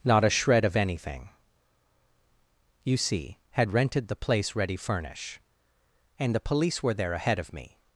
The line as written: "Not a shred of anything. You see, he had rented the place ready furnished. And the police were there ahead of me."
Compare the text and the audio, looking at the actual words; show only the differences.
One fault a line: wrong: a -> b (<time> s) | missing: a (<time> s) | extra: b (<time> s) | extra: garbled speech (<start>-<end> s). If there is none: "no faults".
missing: he (3.4 s)
wrong: furnished -> furnish (4.8 s)